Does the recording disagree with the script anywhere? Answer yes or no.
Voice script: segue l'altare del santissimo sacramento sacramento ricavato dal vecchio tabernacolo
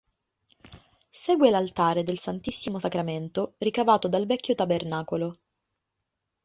yes